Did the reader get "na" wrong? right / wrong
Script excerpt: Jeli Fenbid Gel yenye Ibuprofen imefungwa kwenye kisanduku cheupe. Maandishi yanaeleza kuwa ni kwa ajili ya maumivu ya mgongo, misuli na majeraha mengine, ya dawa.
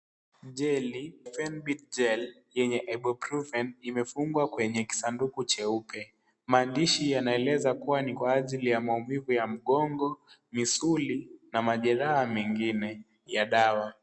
right